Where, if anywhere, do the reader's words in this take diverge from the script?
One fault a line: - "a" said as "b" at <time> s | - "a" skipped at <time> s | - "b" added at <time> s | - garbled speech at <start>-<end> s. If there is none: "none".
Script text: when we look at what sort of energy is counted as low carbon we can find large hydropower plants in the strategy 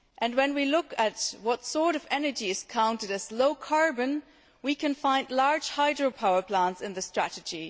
none